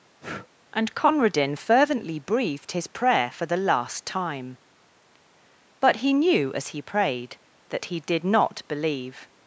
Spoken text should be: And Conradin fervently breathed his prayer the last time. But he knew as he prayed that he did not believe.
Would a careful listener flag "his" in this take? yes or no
no